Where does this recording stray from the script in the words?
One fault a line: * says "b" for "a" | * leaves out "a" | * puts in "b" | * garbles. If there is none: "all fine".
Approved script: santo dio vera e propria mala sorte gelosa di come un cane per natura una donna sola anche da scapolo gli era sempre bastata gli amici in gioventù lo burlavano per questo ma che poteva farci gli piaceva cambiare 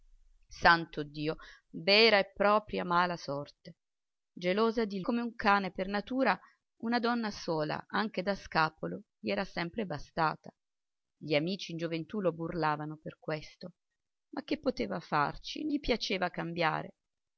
all fine